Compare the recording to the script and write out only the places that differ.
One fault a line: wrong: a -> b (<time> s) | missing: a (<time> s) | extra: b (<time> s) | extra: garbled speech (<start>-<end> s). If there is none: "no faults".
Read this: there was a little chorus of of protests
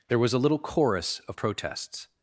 missing: of (1.4 s)